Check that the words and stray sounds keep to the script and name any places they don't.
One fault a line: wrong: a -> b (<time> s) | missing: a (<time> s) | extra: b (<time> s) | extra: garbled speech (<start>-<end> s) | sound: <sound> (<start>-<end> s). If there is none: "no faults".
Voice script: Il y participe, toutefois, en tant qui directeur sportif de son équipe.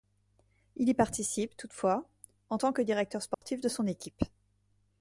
wrong: qui -> que (2.7 s)
sound: dropout (3.3-3.4 s)